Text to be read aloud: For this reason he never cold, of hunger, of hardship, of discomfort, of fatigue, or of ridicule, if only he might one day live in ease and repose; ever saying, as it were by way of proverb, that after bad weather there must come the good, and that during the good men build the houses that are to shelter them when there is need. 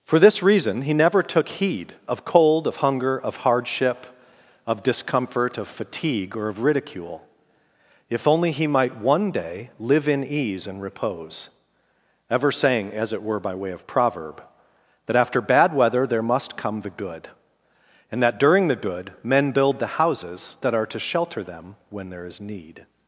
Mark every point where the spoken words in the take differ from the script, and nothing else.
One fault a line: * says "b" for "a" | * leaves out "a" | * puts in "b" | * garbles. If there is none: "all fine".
* puts in "took heed of"